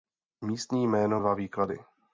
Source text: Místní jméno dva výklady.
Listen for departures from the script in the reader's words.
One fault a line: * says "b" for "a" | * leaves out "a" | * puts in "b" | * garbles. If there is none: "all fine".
all fine